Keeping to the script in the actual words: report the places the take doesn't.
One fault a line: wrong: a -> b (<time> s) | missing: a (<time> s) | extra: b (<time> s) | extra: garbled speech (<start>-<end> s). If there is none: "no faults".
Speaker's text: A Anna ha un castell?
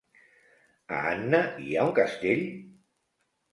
extra: hi (1.7 s)